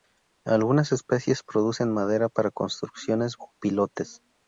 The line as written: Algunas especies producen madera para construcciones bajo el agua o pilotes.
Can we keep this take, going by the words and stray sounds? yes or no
no